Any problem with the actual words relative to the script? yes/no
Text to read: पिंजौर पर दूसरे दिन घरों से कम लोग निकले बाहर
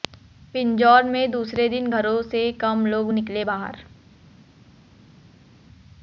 yes